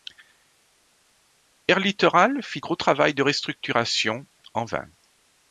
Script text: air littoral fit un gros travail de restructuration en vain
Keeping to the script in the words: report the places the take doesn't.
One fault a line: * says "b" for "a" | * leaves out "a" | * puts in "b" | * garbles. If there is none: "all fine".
* leaves out "un"